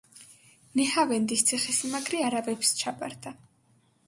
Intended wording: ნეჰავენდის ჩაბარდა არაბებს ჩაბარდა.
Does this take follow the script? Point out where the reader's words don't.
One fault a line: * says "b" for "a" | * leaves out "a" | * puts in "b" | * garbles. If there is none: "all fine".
* says "ციხესიმაგრე" for "ჩაბარდა"